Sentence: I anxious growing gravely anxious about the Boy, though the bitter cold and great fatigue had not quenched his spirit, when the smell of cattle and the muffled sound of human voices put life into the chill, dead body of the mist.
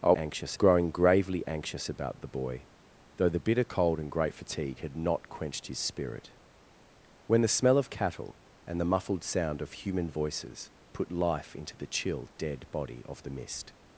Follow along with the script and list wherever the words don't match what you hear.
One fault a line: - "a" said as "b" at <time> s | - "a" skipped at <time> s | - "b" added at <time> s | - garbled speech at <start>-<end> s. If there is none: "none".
none